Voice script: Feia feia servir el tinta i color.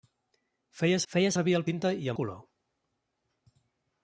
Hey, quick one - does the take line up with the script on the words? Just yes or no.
yes